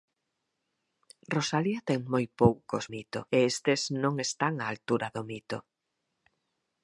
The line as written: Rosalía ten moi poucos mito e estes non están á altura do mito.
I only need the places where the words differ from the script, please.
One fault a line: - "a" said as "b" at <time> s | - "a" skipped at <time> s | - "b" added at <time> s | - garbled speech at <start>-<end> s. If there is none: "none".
none